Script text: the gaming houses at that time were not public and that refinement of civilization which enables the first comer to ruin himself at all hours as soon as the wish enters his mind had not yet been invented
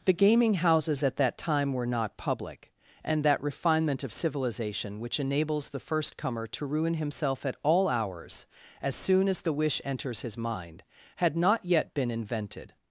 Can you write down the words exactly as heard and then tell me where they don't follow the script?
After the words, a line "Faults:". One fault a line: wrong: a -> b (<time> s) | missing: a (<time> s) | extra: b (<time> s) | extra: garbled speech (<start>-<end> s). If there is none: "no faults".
the gaming houses at that time were not public and that refinement of civilization which enables the first comer to ruin himself at all hours as soon as the wish enters his mind had not yet been invented
Faults:
no faults